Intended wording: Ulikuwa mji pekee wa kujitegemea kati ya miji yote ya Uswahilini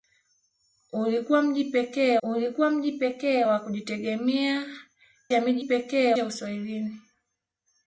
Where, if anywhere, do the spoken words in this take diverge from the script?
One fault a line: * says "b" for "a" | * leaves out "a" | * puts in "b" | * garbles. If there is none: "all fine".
* puts in "ulikuwa mji pekee"
* leaves out "kati"
* says "pekee" for "yote"